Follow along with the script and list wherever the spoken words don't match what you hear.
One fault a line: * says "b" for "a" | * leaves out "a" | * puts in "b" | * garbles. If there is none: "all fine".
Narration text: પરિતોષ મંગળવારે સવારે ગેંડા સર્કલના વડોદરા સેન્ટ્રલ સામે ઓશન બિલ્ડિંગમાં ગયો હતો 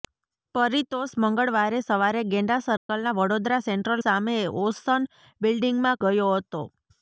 all fine